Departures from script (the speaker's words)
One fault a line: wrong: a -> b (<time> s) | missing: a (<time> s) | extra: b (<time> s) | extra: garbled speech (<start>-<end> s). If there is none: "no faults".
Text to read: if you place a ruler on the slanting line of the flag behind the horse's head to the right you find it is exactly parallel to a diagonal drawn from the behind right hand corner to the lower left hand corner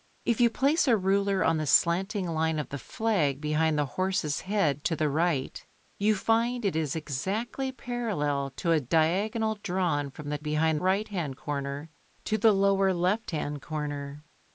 no faults